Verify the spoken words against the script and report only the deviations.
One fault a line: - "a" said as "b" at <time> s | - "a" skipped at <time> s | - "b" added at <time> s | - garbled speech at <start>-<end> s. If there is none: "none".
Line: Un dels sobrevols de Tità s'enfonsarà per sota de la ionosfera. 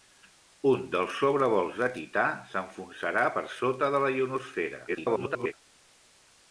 - garbled speech at 4.9-5.5 s